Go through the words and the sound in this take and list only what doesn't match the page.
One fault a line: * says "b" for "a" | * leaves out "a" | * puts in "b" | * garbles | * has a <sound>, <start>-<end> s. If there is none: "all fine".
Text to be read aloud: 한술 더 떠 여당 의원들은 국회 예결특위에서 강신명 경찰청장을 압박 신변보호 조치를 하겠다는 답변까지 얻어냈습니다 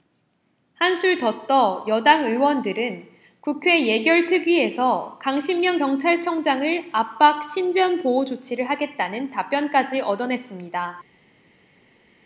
all fine